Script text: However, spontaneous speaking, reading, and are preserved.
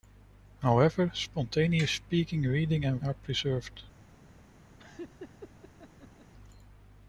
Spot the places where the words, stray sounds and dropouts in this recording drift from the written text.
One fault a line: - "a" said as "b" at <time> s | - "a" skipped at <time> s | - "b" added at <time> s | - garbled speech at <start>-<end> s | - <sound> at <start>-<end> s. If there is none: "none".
- laugh at 4.8-6.3 s